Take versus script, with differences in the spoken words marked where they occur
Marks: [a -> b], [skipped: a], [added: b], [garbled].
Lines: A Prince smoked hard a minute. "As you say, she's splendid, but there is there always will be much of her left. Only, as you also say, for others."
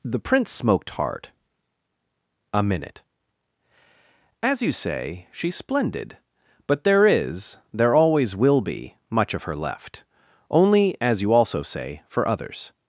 [A -> The] Prince smoked hard a minute. "As you say, she's splendid, but there is there always will be much of her left. Only, as you also say, for others."